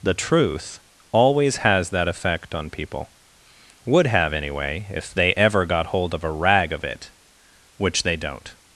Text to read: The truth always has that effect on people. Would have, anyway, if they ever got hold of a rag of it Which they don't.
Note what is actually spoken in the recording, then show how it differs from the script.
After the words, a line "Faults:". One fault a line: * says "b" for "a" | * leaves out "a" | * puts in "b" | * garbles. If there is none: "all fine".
The truth always has that effect on people. Would have, anyway, if they ever got hold of a rag of it Which they don't.
Faults:
all fine